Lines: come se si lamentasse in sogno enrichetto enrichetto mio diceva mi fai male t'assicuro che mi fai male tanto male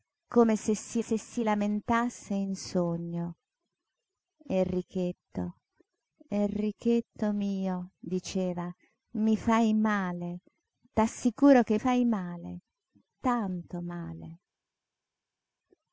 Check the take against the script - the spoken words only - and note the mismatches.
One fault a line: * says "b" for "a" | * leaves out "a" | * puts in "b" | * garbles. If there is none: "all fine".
* puts in "se si"
* leaves out "mi"